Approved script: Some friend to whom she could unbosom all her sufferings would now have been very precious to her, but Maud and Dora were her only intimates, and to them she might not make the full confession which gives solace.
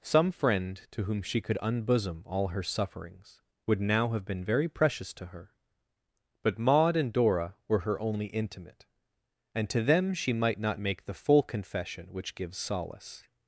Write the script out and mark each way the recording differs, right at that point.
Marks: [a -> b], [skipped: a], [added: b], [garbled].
Some friend to whom she could unbosom all her sufferings would now have been very precious to her, but Maud and Dora were her only [intimates, -> intimate] and to them she might not make the full confession which gives solace.